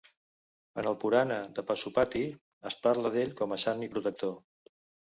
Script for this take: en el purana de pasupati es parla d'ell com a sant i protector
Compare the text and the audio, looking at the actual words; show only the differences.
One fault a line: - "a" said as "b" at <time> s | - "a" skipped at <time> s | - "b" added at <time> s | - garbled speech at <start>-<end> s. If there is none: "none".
none